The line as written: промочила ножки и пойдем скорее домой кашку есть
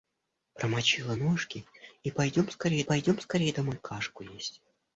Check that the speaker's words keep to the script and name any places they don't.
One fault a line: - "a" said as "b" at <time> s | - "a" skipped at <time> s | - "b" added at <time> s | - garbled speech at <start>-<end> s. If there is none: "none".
- "пойдем скорее" added at 2.8 s